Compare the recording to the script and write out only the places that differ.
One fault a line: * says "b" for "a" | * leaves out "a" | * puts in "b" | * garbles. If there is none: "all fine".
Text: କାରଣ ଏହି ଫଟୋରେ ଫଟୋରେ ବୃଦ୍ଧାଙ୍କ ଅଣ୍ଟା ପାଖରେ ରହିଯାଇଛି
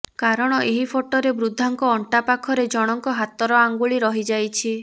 * leaves out "ଫଟୋରେ"
* puts in "ଜଣଙ୍କ ହାତର ଆଙ୍ଗୁଳି"